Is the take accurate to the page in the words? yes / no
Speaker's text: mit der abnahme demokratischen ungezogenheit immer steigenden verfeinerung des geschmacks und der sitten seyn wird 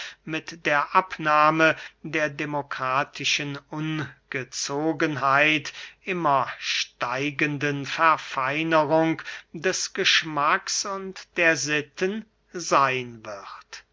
no